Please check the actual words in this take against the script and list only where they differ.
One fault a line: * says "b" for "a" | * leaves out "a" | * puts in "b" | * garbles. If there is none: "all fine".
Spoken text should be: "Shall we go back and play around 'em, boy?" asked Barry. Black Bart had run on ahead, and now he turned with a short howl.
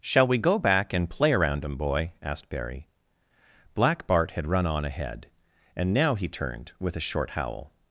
all fine